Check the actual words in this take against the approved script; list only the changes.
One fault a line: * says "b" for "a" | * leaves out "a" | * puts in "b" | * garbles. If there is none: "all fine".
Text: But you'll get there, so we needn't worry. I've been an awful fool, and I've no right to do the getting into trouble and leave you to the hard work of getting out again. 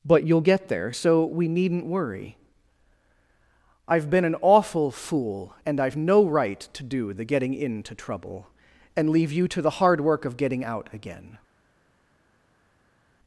all fine